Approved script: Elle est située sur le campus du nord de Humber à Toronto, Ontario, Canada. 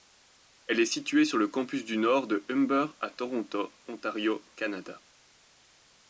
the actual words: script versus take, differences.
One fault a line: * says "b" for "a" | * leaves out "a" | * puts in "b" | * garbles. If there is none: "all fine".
all fine